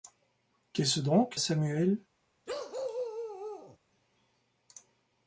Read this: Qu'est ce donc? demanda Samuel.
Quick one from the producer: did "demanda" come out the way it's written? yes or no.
no